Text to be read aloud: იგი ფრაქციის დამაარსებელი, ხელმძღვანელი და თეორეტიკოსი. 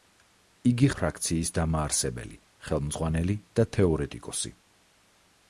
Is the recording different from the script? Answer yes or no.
no